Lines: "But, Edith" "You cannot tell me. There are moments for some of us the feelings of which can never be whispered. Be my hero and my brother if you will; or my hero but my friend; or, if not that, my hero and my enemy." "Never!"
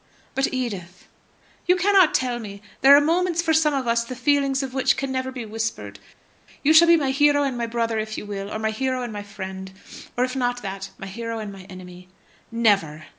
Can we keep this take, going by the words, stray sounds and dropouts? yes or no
no